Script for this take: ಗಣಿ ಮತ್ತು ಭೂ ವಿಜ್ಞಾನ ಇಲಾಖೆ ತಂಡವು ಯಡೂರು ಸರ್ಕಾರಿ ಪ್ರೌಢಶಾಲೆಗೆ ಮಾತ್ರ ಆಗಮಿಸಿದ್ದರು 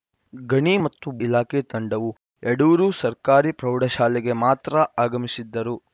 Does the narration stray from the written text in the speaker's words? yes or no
yes